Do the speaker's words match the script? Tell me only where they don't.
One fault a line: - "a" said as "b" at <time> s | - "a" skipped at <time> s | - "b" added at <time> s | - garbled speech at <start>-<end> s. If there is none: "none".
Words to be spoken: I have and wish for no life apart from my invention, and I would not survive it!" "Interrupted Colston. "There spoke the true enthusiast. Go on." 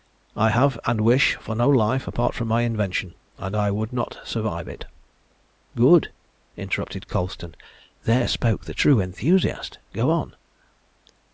- "Good" added at 5.7 s